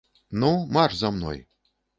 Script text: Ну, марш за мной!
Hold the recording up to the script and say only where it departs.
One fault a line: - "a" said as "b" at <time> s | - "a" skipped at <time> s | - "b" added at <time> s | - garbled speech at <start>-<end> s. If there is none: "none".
none